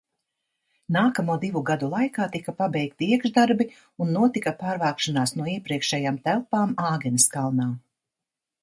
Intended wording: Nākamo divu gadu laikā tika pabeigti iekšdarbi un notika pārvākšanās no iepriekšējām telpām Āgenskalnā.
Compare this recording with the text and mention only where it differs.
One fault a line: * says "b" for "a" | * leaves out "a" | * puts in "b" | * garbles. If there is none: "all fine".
all fine